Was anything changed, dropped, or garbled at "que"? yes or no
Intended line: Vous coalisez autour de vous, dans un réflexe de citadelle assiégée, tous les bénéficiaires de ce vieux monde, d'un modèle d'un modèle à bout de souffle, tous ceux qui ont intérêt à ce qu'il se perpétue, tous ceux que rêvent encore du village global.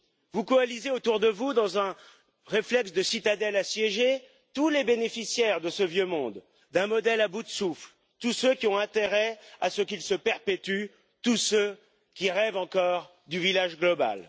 yes